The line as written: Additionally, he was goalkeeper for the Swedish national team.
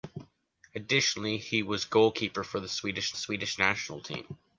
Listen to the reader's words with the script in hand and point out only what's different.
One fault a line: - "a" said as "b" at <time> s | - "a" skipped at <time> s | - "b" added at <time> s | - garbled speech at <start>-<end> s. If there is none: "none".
- "Swedish" added at 3.1 s